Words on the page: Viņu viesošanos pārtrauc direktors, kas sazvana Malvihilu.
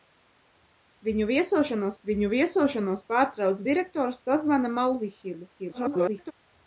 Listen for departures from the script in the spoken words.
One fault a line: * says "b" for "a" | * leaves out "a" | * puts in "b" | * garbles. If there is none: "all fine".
* puts in "viņu viesošanos"
* leaves out "kas"
* garbles